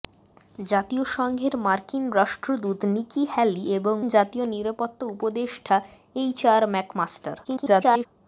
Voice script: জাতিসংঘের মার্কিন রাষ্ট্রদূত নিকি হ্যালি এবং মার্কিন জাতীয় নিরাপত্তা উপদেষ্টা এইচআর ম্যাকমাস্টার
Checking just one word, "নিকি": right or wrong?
right